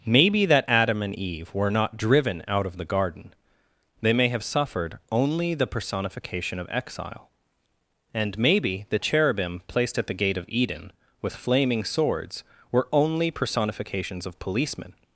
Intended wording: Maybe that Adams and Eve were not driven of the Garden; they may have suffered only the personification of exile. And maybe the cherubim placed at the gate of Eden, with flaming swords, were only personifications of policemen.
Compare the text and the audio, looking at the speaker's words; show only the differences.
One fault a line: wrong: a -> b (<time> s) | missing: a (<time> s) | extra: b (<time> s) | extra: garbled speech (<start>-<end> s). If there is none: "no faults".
wrong: Adams -> Adam (0.7 s)
extra: out (2.5 s)